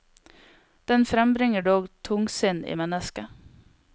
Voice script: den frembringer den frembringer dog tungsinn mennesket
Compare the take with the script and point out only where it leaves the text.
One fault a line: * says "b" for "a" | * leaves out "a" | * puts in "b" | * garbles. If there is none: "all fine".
* leaves out "den frembringer"
* puts in "i"